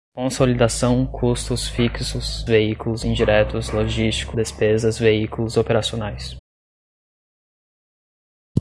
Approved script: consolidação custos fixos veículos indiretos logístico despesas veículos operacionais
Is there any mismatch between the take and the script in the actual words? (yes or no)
no